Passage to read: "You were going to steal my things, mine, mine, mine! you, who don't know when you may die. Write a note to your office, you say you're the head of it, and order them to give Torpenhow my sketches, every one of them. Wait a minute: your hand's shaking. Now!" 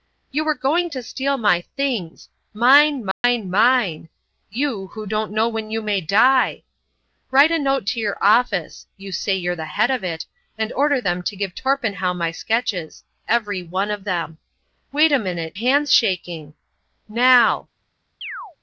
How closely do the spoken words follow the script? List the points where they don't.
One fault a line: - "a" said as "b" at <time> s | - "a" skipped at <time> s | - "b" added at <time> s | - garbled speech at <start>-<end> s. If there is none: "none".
- "your" skipped at 15.5 s